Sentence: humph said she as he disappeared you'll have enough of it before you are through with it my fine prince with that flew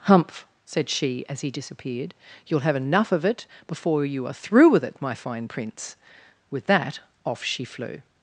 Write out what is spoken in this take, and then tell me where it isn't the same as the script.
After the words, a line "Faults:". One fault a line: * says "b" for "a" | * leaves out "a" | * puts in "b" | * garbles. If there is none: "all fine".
humph said she as he disappeared you'll have enough of it before you are through with it my fine prince with that off she flew
Faults:
* puts in "off she"